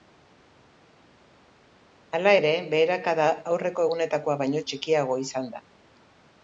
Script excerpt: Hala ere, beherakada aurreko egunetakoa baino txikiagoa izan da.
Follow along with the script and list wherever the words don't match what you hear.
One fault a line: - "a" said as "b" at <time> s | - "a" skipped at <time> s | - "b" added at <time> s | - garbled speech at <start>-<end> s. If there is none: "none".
none